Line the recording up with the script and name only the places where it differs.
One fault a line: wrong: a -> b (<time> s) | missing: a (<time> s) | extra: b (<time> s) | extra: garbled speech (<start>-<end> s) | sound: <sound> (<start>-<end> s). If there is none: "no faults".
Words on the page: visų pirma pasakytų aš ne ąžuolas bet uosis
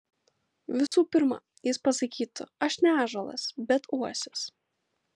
sound: dropout (0.9-0.9 s)
extra: jis (1.7 s)